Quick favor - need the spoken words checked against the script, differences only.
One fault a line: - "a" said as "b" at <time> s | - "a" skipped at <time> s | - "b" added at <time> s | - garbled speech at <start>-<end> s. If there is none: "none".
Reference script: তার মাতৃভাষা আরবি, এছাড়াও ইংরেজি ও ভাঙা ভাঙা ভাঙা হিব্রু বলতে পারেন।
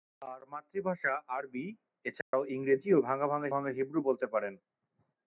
none